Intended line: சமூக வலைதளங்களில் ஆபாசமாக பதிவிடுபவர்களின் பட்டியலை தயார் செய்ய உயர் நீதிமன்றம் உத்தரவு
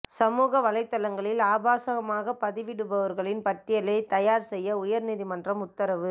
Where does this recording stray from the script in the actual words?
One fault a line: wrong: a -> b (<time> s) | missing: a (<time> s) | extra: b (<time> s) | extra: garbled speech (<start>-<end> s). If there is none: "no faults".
no faults